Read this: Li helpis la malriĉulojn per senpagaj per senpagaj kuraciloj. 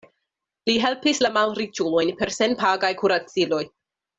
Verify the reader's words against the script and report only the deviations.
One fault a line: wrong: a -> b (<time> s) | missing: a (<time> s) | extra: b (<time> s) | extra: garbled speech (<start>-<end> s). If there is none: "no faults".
missing: per senpagaj (2.9 s)